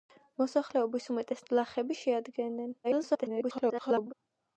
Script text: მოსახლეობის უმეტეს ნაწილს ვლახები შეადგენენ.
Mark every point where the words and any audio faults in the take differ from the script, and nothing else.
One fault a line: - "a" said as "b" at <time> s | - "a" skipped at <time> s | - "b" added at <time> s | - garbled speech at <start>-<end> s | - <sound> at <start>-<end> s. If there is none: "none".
- "ნაწილს" skipped at 1.4 s
- garbled speech at 2.8-4.1 s